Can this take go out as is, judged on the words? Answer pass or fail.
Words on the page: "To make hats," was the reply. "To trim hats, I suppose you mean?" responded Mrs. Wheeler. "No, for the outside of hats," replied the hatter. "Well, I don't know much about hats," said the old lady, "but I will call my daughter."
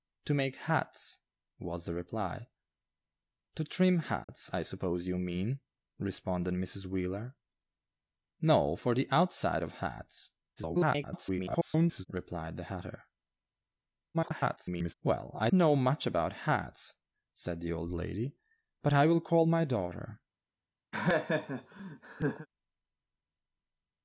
fail